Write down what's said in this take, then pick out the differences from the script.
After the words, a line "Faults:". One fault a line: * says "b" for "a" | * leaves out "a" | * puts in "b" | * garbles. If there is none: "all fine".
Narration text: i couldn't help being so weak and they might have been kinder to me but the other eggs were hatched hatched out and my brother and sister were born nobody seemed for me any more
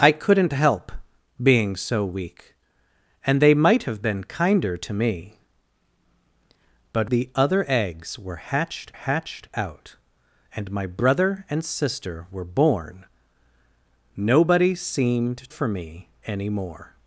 i couldn't help being so weak and they might have been kinder to me but the other eggs were hatched hatched out and my brother and sister were born nobody seemed for me any more
Faults:
all fine